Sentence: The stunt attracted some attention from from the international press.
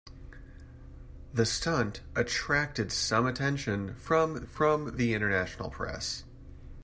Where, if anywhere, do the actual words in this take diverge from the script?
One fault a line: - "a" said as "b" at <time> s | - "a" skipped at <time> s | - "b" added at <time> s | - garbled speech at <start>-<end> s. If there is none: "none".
none